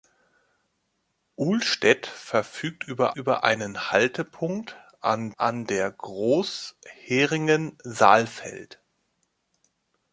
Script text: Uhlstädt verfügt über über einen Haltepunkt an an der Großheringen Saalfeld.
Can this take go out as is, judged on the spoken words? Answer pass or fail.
pass